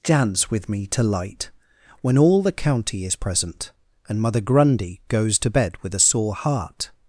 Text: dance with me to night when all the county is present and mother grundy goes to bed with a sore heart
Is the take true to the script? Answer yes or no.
no